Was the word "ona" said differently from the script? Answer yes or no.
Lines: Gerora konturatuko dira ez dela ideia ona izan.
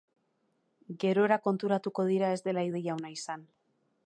no